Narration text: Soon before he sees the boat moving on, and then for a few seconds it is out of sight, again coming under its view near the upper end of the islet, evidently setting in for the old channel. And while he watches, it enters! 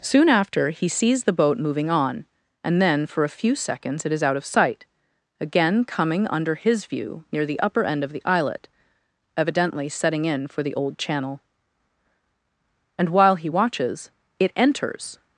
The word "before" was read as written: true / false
false